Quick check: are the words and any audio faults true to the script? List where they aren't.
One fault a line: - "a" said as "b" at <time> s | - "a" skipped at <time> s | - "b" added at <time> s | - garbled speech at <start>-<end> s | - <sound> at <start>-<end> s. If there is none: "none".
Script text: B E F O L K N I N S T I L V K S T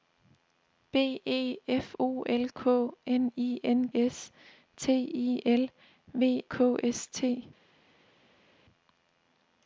none